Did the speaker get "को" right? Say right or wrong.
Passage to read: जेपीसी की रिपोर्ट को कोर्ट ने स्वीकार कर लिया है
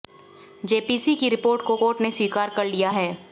right